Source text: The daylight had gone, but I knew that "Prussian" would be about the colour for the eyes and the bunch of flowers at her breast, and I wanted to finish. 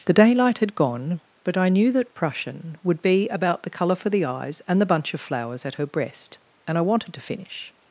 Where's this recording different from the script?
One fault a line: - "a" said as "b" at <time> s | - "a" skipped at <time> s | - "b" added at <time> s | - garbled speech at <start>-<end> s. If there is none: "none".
none